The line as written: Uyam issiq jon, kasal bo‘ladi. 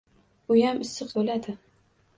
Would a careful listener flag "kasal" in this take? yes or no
yes